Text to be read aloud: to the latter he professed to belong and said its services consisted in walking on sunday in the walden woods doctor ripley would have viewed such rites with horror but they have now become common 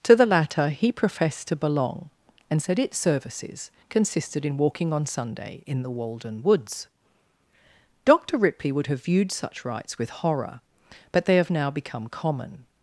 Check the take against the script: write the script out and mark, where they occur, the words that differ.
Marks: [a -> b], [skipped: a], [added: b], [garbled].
to the latter he professed to belong and said its services consisted in walking on sunday in the walden woods doctor ripley would have viewed such rites with horror but they have now become common